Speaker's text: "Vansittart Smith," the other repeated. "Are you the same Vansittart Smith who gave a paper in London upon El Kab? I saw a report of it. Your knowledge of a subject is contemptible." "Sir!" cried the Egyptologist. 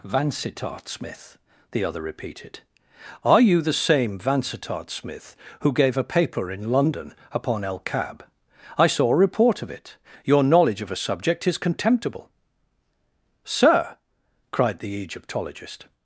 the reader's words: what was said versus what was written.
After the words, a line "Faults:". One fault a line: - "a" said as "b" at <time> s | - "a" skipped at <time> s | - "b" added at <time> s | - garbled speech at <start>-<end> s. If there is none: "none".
"Vansittart Smith," the other repeated. "Are you the same Vansittart Smith who gave a paper in London upon El Kab? I saw a report of it. Your knowledge of a subject is contemptible." "Sir!" cried the Egyptologist.
Faults:
none